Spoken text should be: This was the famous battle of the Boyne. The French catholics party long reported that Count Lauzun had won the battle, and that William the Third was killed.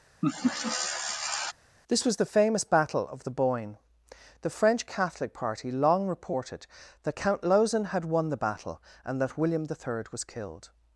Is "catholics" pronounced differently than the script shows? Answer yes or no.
yes